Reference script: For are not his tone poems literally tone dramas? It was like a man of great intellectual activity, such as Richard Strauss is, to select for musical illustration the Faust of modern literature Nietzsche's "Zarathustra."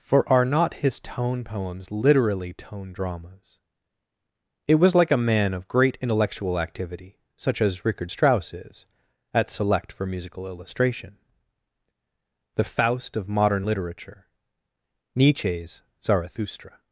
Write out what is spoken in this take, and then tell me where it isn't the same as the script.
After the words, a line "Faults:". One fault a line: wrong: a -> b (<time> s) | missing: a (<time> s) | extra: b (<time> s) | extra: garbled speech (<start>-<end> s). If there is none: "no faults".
For are not his tone poems literally tone dramas? It was like a man of great intellectual activity, such as Richard Strauss is, at select for musical illustration the Faust of modern literature Nietzsche's "Zarathustra."
Faults:
wrong: to -> at (9.3 s)